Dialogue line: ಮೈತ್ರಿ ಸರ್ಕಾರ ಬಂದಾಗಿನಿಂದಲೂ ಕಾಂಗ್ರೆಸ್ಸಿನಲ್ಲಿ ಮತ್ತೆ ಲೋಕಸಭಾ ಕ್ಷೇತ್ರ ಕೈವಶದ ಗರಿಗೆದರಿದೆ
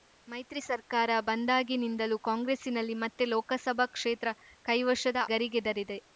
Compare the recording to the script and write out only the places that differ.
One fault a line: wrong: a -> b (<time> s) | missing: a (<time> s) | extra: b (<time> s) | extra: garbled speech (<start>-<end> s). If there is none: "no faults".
no faults